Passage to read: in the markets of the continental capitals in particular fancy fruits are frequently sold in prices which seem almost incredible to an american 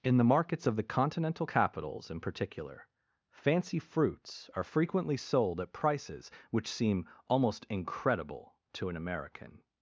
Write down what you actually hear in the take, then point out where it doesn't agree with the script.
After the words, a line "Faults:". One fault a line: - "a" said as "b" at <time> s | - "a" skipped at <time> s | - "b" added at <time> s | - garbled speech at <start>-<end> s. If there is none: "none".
in the markets of the continental capitals in particular fancy fruits are frequently sold at prices which seem almost incredible to an american
Faults:
- "in" said as "at" at 5.6 s